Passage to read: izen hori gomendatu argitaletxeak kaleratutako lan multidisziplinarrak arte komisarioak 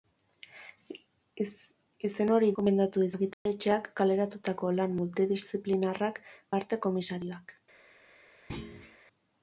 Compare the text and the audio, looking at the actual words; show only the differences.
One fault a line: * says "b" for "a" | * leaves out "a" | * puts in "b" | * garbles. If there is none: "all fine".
all fine